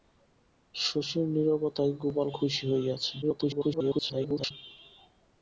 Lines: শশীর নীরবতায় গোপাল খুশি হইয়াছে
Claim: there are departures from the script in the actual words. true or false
true